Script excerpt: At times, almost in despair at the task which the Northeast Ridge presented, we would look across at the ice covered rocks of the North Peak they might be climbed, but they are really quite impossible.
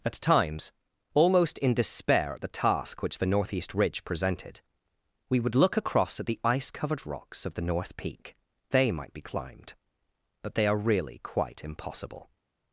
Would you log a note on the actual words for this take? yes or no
no